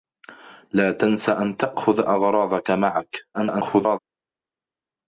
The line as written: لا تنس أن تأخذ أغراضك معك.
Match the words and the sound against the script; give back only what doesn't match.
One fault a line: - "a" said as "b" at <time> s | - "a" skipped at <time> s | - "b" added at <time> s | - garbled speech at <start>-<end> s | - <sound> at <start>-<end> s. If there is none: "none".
- garbled speech at 3.3-4.0 s